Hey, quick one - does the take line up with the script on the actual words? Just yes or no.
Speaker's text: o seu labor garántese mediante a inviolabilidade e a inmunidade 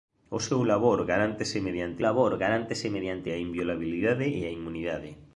no